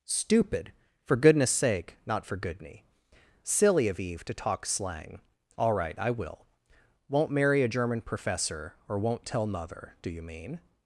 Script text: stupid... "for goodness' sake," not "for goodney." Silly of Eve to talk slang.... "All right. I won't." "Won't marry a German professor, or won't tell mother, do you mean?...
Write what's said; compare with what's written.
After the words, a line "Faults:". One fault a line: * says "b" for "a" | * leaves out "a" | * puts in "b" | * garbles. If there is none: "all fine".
stupid... "for goodness' sake," not "for goodney." Silly of Eve to talk slang.... "All right. I will." "Won't marry a German professor, or won't tell mother, do you mean?...
Faults:
* says "will" for "won't"